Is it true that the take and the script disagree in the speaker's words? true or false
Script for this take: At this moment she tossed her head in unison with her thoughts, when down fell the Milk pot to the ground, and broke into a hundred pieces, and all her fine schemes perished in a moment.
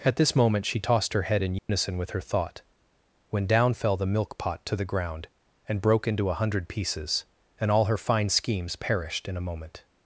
true